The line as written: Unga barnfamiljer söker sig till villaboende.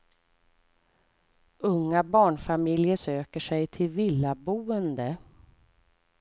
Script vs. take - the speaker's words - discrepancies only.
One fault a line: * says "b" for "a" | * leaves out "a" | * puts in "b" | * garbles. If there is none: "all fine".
all fine